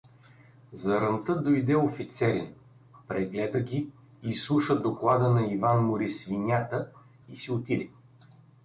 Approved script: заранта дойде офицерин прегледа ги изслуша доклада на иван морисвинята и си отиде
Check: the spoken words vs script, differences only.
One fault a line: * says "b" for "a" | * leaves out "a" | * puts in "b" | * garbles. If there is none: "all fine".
all fine